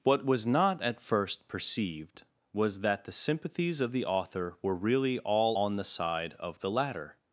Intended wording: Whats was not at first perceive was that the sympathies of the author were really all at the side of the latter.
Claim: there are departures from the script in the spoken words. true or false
true